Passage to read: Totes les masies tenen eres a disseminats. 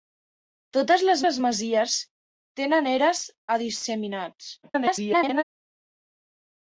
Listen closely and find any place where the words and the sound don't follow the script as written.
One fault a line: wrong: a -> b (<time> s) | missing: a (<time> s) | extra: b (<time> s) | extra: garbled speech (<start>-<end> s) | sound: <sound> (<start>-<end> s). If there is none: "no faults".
extra: les (1.2 s)
extra: garbled speech (4.6-5.4 s)